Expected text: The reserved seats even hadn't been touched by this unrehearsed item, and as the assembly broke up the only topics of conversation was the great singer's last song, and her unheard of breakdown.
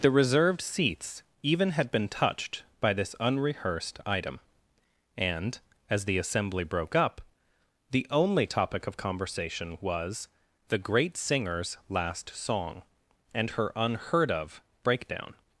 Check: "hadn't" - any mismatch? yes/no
yes